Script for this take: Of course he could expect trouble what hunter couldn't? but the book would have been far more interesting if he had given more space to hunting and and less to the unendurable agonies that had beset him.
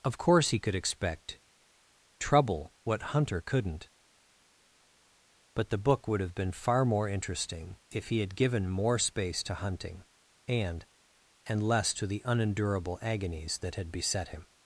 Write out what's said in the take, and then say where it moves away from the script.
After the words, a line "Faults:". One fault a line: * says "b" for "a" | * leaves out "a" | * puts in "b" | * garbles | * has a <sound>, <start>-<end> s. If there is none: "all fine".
Of course he could expect trouble what hunter couldn't? but the book would have been far more interesting if he had given more space to hunting and and less to the unendurable agonies that had beset him.
Faults:
all fine